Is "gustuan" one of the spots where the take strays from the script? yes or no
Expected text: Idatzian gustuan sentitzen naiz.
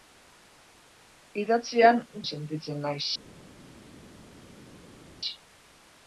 yes